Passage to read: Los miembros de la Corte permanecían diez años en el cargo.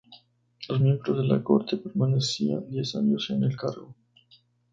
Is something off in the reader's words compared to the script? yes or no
no